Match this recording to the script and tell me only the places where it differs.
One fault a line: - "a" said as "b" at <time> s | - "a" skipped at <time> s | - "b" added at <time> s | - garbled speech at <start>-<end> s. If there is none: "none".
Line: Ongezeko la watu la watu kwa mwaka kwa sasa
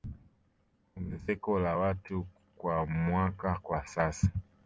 - "la watu" skipped at 2.3 s